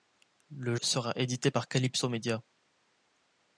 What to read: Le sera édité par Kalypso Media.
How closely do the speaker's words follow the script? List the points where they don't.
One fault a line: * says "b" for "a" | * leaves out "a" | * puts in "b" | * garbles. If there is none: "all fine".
all fine